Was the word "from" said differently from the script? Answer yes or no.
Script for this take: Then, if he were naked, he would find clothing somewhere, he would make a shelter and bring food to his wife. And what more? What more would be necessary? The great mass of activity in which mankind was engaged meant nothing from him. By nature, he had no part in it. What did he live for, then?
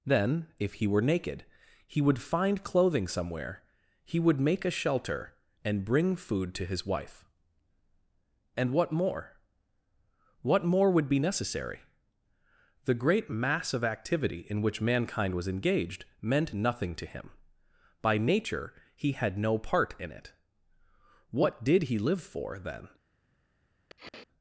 yes